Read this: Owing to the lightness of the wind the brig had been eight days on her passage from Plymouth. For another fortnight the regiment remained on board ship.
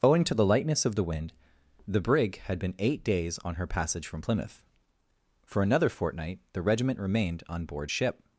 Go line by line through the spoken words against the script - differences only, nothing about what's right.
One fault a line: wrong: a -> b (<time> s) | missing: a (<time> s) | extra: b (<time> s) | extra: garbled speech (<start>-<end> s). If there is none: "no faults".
no faults